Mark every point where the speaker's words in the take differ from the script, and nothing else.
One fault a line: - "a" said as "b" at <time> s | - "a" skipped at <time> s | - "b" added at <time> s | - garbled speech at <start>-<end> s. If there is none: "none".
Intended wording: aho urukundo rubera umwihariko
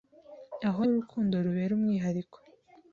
none